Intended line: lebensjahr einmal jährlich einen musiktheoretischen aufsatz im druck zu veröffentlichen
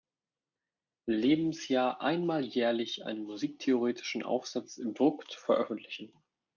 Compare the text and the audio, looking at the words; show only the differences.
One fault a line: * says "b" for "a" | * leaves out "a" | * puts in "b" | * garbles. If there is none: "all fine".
all fine